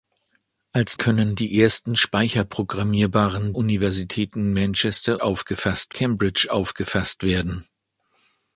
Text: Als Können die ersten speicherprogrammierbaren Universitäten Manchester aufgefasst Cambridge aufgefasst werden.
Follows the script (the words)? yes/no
yes